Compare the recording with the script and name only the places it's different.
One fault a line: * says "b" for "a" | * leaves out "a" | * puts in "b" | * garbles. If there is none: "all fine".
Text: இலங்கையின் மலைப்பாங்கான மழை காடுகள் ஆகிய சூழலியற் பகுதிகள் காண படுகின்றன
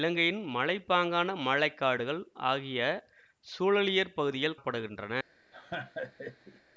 * leaves out "காண"